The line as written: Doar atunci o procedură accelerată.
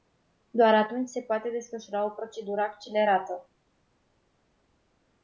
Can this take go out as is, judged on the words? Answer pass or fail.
fail